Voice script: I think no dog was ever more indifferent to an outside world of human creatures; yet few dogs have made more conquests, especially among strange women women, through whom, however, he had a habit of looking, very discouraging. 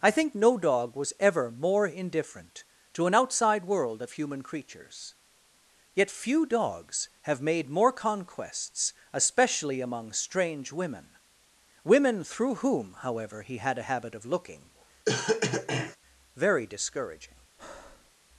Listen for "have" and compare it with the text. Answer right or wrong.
right